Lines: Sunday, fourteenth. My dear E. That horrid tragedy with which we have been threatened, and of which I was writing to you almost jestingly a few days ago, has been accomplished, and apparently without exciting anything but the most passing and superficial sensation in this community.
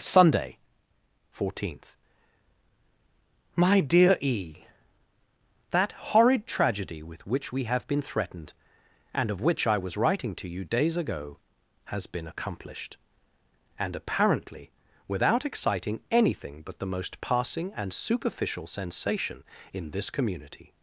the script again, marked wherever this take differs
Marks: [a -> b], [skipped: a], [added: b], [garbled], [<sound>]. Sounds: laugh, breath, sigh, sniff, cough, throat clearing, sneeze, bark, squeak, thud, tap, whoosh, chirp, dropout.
Sunday, fourteenth. My dear E. That horrid tragedy with which we have been threatened, and of which I was writing to you [skipped: almost jestingly a few] days ago, has been accomplished, and apparently without exciting anything but the most passing and superficial sensation in this community.